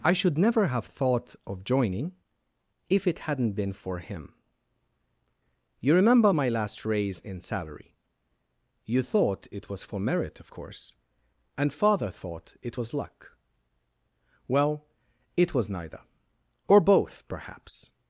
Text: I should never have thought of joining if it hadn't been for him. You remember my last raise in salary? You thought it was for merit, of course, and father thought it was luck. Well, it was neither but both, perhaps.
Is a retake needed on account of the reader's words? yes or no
yes